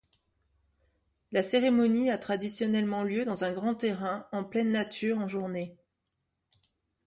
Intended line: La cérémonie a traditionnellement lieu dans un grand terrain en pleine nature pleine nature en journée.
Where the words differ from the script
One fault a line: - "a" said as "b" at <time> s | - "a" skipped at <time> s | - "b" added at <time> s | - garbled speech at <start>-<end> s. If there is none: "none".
- "pleine nature" skipped at 5.2 s